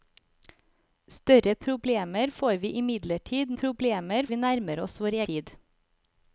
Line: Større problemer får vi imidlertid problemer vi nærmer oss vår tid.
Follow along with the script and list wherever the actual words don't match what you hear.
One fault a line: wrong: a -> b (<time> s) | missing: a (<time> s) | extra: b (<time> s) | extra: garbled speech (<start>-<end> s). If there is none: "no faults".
no faults